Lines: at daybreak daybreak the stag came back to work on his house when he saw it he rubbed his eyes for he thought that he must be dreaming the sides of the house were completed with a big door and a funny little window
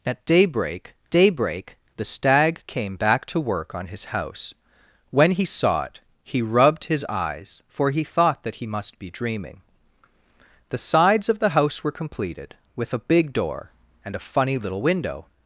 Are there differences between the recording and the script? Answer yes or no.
no